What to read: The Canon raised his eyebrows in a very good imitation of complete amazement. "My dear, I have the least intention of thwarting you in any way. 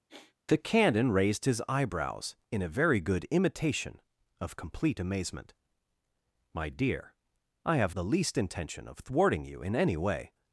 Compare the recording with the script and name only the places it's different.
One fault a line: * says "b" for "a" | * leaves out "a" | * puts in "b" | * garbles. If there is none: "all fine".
all fine